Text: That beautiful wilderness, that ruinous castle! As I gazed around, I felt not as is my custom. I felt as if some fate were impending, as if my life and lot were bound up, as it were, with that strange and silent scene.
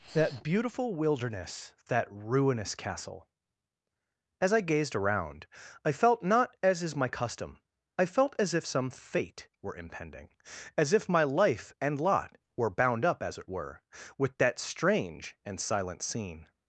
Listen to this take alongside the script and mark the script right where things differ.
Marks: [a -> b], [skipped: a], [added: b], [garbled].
That beautiful wilderness, that ruinous castle! As I gazed around, I felt not as is my custom. I felt as if some fate were impending, as if my life and lot were bound up, as it were, with that strange and silent scene.